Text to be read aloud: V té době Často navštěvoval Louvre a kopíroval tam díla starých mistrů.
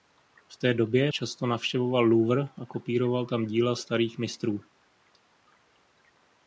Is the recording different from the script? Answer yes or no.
no